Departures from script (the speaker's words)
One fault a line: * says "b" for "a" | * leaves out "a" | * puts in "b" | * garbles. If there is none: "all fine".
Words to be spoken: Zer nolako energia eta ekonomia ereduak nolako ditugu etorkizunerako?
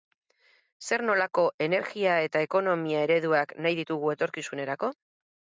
* says "nahi" for "nolako"